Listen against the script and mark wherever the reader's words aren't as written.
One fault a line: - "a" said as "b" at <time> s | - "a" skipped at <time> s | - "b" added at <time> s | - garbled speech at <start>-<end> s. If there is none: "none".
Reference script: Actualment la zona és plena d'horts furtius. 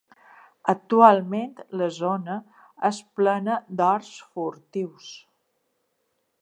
none